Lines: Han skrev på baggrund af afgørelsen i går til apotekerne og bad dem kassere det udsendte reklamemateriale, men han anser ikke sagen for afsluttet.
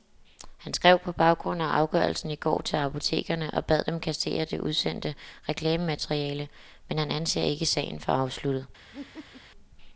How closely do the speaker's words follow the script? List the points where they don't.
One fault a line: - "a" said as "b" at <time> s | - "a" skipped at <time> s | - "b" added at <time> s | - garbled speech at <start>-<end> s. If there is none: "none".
none